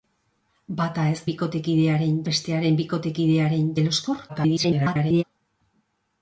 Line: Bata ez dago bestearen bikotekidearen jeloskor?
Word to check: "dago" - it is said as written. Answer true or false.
false